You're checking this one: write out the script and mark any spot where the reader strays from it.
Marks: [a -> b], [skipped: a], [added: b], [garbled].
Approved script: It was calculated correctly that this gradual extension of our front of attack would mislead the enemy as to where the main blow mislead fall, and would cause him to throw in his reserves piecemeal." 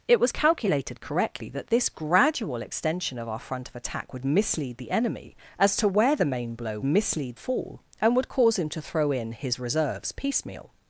It was calculated correctly that this gradual extension of our front of attack would mislead the enemy as to where the main blow mislead fall, and would cause him to throw in his reserves piecemeal."